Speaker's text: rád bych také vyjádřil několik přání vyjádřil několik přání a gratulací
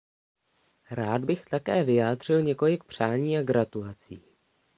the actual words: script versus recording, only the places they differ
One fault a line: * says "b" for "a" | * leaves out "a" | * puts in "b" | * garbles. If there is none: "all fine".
* leaves out "vyjádřil několik přání"